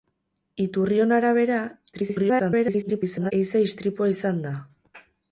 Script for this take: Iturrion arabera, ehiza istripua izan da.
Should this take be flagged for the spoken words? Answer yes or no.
yes